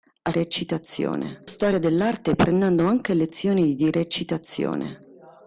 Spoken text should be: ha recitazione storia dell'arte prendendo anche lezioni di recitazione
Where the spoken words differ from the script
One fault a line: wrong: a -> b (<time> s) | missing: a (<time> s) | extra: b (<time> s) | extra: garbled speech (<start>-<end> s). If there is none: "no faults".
no faults